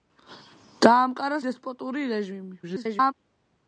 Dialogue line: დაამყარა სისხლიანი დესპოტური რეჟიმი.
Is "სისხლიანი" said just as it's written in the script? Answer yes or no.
no